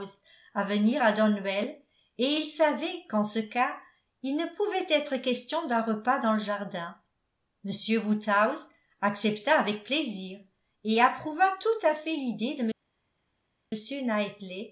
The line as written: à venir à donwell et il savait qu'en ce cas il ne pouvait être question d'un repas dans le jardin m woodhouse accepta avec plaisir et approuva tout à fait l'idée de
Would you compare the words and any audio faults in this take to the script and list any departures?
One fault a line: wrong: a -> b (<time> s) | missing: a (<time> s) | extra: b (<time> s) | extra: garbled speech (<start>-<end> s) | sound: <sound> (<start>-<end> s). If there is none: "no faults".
no faults